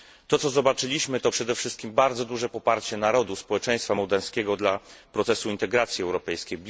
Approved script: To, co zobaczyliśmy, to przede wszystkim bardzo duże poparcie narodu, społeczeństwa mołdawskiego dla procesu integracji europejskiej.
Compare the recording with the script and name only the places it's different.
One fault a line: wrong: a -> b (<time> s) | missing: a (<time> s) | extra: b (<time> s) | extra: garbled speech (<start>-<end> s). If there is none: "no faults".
no faults